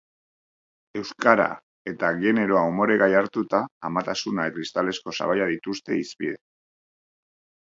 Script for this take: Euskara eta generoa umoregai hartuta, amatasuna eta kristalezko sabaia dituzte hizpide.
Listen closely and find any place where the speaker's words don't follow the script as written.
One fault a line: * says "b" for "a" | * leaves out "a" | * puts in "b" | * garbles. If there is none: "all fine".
* leaves out "eta"